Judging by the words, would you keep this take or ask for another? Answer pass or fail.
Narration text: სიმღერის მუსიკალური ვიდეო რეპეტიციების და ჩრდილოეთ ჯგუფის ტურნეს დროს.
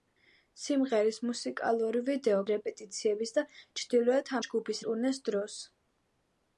pass